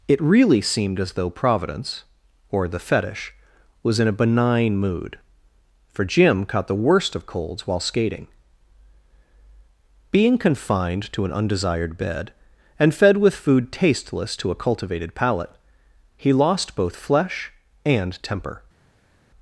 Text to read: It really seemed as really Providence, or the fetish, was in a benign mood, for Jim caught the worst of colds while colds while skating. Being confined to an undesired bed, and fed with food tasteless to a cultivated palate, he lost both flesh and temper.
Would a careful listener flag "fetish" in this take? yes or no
no